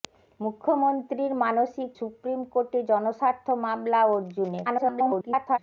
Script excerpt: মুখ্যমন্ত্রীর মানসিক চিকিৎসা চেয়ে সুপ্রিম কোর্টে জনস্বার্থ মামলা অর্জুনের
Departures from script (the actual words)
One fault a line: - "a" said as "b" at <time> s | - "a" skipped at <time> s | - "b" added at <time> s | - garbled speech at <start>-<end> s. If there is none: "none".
- "চিকিৎসা চেয়ে" skipped at 1.9 s
- garbled speech at 4.6-5.6 s